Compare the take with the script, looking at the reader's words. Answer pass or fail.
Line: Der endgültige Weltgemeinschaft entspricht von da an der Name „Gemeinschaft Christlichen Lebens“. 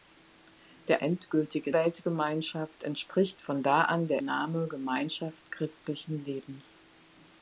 pass